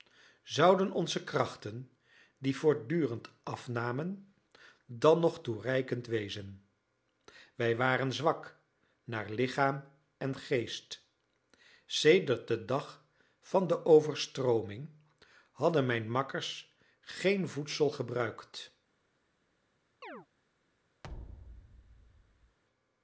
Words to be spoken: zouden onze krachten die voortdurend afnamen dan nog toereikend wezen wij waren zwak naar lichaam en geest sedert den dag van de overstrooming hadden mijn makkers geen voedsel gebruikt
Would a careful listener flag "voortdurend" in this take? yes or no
no